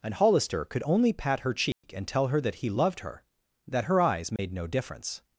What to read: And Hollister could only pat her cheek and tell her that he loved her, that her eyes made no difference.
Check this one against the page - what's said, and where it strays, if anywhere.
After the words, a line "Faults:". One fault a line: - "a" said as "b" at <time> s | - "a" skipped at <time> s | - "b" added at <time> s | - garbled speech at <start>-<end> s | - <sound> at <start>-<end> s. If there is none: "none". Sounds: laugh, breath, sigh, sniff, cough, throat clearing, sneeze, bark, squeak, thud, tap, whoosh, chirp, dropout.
And Hollister could only pat her cheek and tell her that he loved her, that her eyes made no difference.
Faults:
- dropout at 1.7-1.8 s
- dropout at 4.4-4.4 s